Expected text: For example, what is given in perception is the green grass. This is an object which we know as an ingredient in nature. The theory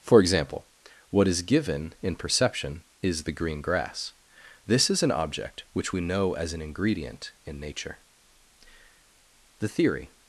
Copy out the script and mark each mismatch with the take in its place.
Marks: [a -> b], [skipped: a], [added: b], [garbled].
For example, what is given in perception is the green grass. This is an object which we know as an ingredient in nature. The theory